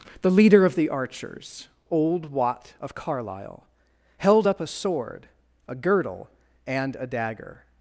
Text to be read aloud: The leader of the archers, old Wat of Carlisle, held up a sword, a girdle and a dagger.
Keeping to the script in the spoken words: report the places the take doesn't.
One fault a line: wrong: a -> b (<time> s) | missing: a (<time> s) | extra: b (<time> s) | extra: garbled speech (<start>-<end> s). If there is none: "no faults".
no faults